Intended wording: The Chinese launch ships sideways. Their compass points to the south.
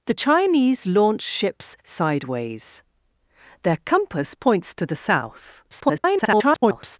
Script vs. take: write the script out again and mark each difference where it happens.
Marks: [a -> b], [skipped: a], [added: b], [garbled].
The Chinese launch ships sideways. Their compass points to the south. [garbled]